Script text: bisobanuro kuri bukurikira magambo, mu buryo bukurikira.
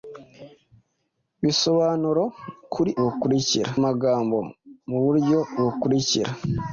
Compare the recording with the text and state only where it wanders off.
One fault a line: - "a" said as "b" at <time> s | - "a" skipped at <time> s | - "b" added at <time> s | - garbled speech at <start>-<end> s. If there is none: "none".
none